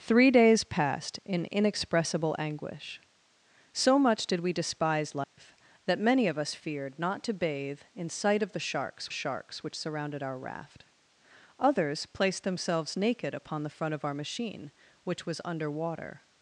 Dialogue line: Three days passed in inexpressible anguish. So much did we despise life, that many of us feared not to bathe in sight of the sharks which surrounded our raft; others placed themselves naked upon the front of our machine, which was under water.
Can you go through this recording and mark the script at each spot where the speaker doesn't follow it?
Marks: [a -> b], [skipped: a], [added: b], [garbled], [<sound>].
Three days passed in inexpressible anguish. So much did we despise life, [dropout] that many of us feared not to bathe in sight of the sharks [added: sharks] which surrounded our raft; others placed themselves naked upon the front of our machine, which was under water.